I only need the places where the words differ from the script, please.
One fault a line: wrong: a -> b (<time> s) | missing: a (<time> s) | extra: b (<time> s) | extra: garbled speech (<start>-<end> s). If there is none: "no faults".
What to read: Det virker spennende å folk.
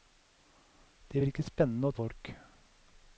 no faults